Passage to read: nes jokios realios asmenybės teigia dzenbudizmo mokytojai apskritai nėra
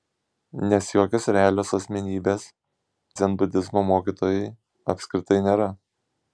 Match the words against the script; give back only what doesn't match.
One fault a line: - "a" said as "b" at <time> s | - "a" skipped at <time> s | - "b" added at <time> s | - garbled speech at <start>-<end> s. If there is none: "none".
- "teigia" skipped at 2.5 s